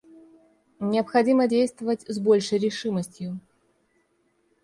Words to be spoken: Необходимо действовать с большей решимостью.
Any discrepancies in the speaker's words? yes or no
no